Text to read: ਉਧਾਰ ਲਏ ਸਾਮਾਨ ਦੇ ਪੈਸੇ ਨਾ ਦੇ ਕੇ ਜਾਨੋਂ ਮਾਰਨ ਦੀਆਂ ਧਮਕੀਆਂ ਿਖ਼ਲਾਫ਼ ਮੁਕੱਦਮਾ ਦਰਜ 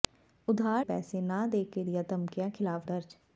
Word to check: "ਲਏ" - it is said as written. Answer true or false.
false